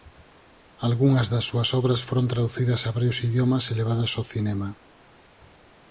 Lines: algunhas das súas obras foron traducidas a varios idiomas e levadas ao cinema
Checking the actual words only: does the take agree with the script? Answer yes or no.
yes